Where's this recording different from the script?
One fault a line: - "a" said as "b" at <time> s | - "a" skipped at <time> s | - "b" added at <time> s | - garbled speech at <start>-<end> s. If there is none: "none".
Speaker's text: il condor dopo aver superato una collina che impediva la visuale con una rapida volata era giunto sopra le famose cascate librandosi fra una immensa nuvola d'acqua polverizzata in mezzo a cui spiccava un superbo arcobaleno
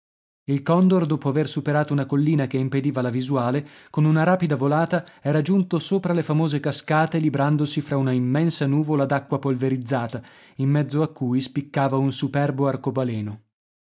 none